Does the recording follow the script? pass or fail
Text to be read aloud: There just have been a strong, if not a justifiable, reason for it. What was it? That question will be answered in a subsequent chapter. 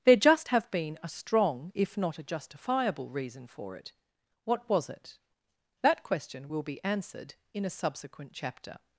pass